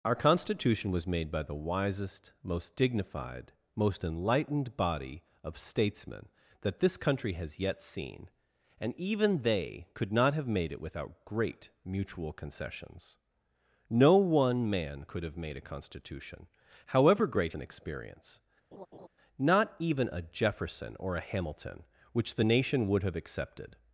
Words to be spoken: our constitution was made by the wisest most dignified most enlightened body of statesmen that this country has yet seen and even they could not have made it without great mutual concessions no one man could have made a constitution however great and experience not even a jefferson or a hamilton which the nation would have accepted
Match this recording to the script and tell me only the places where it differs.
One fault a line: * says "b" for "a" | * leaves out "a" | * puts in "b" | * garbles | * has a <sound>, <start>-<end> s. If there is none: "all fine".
* has a laugh, 18.7-19.1 s